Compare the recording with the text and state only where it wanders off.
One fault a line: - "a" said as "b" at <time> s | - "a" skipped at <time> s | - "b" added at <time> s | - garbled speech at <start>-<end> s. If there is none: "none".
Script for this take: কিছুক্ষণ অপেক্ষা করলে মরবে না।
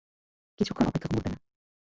- "করলে" skipped at 1.1 s